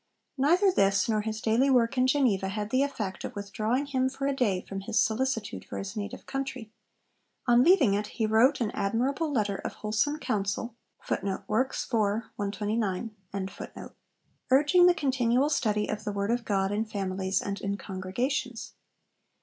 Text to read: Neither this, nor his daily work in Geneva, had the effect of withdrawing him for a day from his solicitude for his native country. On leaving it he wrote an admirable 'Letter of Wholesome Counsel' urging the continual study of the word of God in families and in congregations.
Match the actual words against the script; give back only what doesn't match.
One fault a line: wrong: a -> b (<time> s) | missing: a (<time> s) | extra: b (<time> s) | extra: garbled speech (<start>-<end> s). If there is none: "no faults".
no faults